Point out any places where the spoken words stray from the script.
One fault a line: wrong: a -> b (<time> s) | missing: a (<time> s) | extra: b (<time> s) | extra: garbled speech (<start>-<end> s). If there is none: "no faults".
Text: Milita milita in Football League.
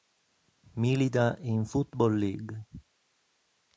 missing: milita (1.4 s)